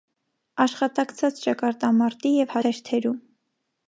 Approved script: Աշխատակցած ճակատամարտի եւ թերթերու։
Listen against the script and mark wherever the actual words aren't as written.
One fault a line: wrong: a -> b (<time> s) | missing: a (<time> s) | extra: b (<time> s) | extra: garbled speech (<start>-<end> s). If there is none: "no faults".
no faults